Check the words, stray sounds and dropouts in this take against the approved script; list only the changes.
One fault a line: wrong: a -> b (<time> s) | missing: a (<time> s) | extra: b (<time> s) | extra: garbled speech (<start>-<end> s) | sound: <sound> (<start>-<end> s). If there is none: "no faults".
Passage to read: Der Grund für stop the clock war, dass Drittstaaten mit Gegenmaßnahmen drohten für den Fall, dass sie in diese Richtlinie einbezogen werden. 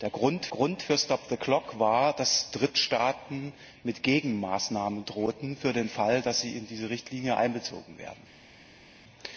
extra: Grund (0.5 s)